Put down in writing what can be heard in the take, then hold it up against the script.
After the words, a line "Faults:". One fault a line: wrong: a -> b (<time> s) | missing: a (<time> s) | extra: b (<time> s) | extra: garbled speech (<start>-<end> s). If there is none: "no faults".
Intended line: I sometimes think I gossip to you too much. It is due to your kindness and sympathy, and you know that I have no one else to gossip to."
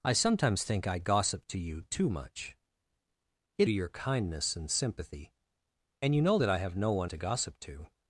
I sometimes think I gossip to you too much. It to your kindness and sympathy, and you know that I have no one to gossip to."
Faults:
missing: is due (3.7 s)
missing: else (7.1 s)